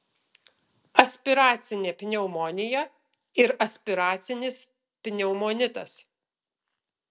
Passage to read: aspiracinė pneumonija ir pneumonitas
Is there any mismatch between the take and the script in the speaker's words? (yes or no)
yes